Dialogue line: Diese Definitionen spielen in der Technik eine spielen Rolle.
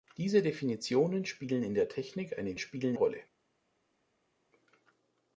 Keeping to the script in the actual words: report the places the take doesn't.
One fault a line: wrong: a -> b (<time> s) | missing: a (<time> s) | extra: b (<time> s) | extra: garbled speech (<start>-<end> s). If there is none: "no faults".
no faults